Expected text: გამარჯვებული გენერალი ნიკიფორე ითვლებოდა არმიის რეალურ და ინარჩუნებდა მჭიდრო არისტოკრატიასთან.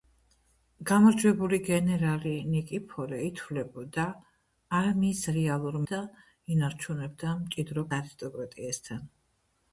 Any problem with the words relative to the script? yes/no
no